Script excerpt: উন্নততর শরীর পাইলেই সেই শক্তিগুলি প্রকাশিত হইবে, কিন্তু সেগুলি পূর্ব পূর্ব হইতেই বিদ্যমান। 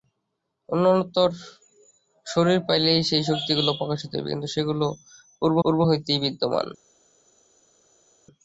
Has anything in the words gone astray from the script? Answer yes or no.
no